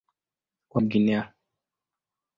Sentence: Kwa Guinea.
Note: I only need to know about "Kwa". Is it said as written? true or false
true